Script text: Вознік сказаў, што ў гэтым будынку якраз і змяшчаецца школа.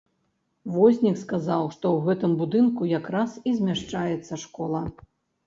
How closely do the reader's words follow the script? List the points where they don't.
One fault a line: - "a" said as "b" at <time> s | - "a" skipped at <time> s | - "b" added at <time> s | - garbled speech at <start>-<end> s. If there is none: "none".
none